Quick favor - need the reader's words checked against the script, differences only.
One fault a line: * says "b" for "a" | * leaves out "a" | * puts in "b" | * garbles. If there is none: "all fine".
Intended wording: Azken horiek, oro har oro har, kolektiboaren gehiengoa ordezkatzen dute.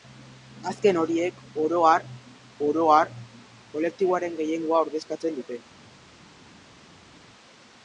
all fine